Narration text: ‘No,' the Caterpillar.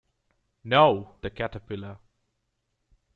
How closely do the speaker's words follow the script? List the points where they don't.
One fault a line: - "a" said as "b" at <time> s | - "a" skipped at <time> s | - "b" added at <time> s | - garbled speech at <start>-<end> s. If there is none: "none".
none